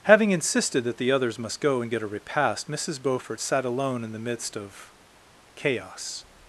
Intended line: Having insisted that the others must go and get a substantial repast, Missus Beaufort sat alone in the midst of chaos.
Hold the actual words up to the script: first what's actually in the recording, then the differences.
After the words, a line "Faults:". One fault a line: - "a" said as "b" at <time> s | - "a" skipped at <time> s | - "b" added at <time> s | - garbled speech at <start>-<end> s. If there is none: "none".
Having insisted that the others must go and get a repast, Missus Beaufort sat alone in the midst of chaos.
Faults:
- "substantial" skipped at 2.1 s